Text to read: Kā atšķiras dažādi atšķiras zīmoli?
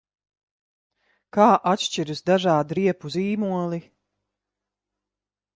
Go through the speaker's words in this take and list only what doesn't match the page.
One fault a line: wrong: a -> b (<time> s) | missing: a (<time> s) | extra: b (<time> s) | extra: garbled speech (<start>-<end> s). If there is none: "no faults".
wrong: atšķiras -> riepu (2.8 s)